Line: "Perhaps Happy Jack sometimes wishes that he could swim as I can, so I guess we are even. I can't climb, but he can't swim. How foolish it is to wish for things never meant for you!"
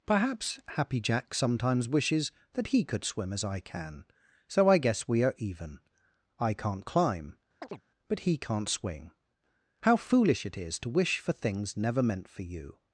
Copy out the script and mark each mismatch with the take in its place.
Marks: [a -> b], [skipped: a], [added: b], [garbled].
"Perhaps Happy Jack sometimes wishes that he could swim as I can, so I guess we are even. I can't climb, but he can't [swim. -> swing] How foolish it is to wish for things never meant for you!"